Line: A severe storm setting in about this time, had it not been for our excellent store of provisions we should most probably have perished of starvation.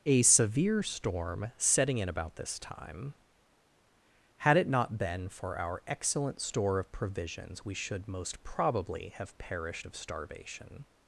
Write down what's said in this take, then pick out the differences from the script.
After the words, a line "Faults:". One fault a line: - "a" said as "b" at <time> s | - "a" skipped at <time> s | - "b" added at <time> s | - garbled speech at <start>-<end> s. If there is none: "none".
A severe storm setting in about this time, had it not been for our excellent store of provisions we should most probably have perished of starvation.
Faults:
none